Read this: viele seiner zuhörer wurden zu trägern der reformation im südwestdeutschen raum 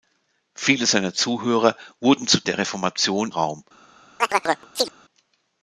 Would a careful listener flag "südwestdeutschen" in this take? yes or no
yes